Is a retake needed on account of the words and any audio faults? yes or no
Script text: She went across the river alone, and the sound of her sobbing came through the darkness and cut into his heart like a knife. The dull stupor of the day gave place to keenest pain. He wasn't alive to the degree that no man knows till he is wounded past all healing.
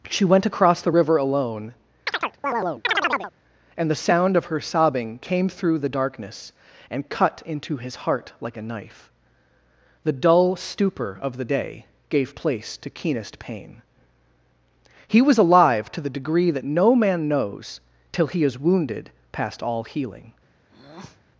yes